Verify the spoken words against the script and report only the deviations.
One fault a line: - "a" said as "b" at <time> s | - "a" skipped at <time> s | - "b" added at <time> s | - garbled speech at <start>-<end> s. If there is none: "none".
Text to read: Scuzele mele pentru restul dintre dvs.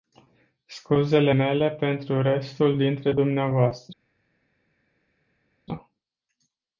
none